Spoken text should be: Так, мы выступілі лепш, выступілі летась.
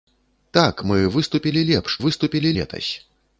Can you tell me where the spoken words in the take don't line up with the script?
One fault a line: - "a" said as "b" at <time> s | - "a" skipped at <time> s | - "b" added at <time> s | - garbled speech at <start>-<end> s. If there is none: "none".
none